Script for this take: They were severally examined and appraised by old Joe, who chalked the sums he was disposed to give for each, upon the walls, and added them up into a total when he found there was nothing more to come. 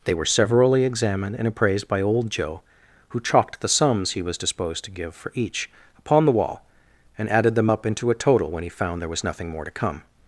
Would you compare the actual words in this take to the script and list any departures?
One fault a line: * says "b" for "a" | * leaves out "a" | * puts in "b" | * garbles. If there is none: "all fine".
* says "wall" for "walls"